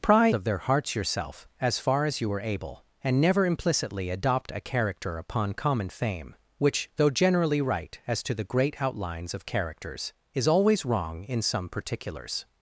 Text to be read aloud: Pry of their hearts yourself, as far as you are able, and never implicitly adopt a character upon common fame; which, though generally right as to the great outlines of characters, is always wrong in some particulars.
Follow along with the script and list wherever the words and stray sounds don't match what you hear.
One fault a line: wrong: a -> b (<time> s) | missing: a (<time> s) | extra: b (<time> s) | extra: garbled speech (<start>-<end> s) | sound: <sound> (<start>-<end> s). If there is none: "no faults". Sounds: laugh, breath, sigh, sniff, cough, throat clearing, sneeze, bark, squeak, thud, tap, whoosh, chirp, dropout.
no faults